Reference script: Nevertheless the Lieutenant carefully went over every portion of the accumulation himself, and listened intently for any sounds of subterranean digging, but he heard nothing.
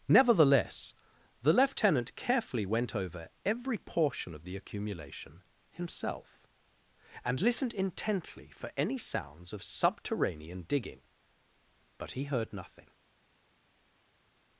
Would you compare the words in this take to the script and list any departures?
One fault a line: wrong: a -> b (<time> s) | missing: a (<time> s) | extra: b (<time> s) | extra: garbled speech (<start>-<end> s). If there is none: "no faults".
no faults